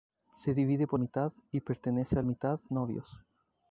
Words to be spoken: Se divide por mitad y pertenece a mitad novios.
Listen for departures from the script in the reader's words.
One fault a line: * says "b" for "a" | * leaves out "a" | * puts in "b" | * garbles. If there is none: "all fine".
all fine